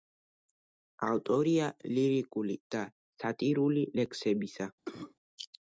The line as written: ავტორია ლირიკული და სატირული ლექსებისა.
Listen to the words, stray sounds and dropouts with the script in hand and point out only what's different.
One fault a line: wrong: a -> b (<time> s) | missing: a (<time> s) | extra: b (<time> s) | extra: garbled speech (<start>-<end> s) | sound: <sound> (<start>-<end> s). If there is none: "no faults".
sound: cough (4.9-5.1 s)